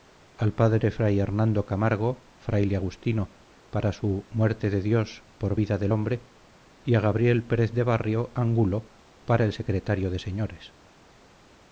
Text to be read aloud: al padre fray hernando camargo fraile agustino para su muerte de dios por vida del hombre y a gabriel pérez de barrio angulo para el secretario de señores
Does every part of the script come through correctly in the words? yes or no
yes